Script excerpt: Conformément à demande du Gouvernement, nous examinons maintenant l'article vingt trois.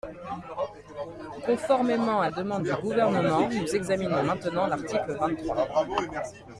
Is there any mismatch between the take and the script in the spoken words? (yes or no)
no